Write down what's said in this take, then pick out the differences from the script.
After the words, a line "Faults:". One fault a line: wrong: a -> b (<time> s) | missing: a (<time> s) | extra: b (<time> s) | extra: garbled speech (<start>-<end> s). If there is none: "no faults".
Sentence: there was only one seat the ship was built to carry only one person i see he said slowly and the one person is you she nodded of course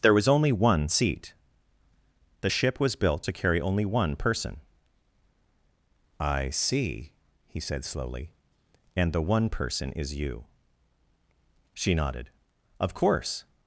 there was only one seat the ship was built to carry only one person i see he said slowly and the one person is you she nodded of course
Faults:
no faults